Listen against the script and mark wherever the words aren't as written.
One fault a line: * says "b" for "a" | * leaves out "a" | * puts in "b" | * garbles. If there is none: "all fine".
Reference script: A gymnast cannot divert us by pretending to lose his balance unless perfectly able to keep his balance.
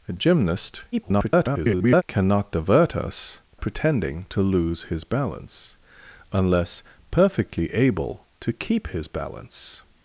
* garbles
* leaves out "by"